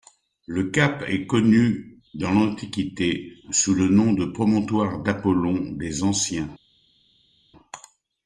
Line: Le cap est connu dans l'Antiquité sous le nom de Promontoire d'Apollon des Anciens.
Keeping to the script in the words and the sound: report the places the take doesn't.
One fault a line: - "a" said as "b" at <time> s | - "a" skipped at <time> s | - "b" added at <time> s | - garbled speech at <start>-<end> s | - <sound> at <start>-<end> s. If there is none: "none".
none